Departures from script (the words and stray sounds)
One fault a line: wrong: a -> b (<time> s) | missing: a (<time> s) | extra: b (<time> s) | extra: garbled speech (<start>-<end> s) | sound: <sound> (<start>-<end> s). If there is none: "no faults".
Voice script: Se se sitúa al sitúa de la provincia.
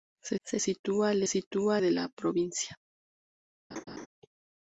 sound: laugh (3.7-4.1 s)